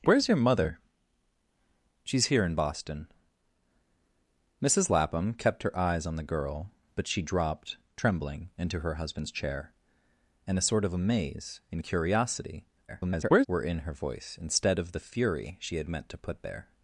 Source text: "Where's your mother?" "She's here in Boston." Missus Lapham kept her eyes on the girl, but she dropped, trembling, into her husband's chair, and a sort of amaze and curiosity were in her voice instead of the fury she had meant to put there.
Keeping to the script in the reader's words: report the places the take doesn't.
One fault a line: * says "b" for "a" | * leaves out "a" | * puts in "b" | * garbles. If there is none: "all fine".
* garbles